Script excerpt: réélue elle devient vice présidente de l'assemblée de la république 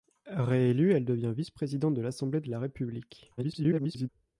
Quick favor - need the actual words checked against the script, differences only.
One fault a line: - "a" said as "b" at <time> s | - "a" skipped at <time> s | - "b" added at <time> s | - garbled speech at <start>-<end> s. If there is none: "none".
- garbled speech at 3.4-4.1 s